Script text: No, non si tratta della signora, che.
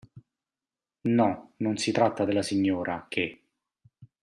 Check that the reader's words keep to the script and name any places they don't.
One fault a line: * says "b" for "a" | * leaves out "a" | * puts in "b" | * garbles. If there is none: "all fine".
all fine